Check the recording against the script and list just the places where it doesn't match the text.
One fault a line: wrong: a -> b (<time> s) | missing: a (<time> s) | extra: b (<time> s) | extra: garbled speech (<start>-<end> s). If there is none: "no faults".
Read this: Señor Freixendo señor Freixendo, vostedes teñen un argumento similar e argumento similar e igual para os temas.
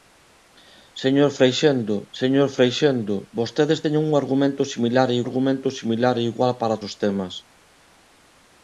no faults